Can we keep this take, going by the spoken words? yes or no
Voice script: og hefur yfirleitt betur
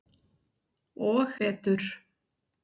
no